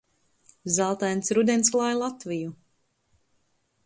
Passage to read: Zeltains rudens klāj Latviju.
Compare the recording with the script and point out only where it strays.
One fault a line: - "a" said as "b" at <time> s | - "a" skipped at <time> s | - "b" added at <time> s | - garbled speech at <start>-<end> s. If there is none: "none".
none